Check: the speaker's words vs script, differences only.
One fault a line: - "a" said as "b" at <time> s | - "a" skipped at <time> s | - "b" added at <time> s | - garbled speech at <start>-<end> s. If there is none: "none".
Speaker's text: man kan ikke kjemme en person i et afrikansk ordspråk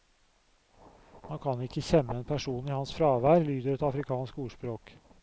- "hans fravær lyder" added at 2.8 s